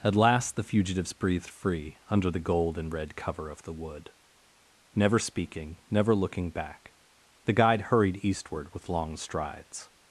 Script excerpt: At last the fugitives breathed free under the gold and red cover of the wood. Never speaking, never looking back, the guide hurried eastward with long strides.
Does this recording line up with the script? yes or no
yes